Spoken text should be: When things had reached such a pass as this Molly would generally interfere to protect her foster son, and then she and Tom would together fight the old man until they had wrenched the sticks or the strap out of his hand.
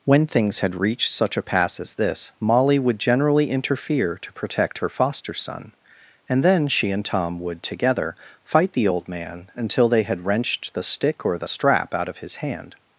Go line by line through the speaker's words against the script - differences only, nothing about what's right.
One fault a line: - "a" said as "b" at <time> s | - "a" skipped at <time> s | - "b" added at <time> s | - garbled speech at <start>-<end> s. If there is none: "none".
- "sticks" said as "stick" at 10.8 s